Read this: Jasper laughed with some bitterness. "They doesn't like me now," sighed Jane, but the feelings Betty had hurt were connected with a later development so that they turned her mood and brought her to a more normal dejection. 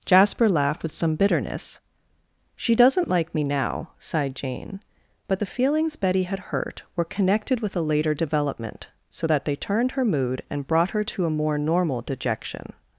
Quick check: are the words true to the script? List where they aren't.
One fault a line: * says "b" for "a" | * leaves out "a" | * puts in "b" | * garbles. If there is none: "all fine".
* says "She" for "They"